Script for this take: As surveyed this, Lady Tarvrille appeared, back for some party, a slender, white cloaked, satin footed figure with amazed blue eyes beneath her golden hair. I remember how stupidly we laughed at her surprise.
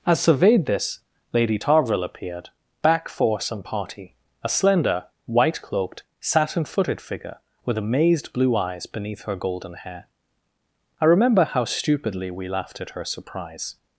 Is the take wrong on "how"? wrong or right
right